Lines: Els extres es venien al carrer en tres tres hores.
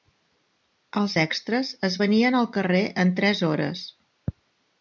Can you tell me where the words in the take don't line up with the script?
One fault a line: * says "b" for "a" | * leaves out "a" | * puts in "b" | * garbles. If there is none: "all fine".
* leaves out "tres"